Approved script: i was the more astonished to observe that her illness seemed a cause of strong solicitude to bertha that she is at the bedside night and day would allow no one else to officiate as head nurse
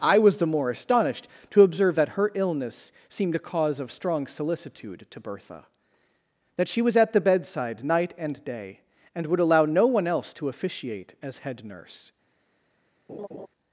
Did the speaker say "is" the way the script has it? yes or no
no